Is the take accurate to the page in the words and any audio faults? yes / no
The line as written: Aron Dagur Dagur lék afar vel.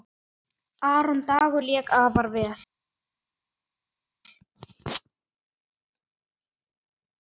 no